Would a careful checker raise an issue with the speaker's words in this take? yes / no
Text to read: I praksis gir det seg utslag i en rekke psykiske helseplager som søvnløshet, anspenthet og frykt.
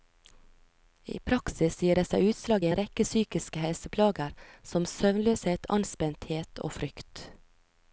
no